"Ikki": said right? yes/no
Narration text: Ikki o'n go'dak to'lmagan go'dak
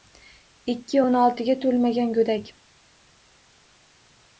yes